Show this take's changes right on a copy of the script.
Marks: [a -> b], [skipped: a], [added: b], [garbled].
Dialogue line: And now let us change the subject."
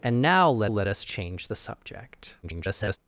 And now let [added: let] us change the subject." [garbled]